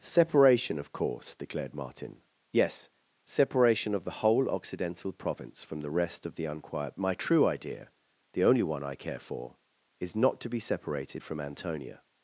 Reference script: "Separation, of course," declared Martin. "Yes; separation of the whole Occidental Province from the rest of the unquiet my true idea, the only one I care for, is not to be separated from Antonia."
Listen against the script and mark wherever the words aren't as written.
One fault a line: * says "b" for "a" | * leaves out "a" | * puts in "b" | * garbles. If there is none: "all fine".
all fine